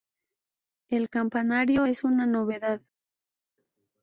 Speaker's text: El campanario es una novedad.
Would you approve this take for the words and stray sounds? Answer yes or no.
yes